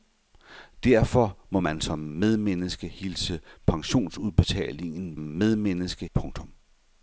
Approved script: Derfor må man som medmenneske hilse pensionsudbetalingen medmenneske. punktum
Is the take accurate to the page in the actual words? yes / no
yes